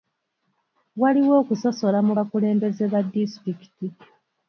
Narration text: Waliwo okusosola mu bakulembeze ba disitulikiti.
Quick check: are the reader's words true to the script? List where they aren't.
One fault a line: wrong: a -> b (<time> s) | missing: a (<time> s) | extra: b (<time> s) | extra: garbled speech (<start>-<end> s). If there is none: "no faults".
no faults